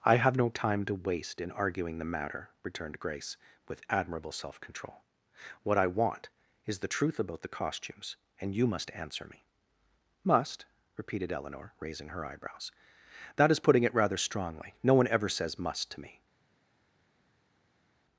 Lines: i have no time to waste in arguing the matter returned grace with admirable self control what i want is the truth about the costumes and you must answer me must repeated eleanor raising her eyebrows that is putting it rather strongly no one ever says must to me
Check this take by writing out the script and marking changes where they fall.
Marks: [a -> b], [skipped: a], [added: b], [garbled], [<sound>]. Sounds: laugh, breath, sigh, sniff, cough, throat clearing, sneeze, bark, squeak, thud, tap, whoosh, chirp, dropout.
i have no time to waste in arguing the matter returned grace with admirable self control what i want is the truth about the costumes and you must answer me must repeated eleanor raising her eyebrows that is putting it rather strongly no one ever says must to me